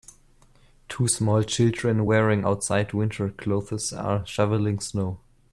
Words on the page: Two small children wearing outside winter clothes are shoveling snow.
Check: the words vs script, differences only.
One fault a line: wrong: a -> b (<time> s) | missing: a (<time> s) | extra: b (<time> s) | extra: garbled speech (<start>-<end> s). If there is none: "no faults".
no faults